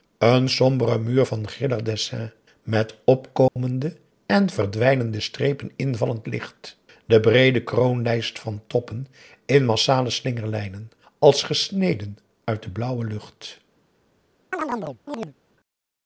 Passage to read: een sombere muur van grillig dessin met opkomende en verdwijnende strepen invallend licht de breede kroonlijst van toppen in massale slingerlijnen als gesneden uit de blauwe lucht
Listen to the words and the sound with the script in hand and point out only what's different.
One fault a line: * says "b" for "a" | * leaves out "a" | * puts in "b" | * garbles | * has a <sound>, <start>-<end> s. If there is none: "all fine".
* has a dropout, 3.5-3.6 s
* has a chirp, 14.5-15.3 s